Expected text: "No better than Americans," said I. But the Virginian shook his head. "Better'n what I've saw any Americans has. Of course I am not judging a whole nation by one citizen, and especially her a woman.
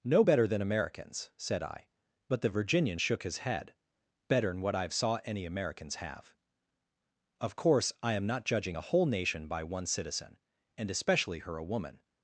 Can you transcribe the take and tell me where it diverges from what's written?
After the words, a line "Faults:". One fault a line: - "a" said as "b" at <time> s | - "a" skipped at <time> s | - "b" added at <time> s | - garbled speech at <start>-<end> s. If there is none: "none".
"No better than Americans," said I. But the Virginian shook his head. "Better'n what I've saw any Americans have. Of course I am not judging a whole nation by one citizen, and especially her a woman.
Faults:
- "has" said as "have" at 5.9 s